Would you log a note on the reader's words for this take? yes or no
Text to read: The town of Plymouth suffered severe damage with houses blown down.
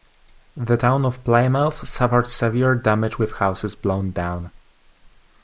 no